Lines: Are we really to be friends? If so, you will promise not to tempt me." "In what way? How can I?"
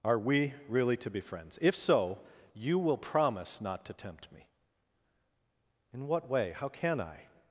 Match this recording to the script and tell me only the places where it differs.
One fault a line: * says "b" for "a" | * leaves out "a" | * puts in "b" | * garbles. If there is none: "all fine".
all fine